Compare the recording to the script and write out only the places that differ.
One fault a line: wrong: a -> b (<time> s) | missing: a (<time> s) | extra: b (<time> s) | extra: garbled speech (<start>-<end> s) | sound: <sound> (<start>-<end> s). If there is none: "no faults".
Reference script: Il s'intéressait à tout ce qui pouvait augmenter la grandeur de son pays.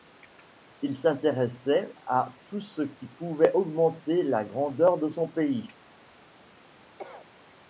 sound: cough (7.0-7.3 s)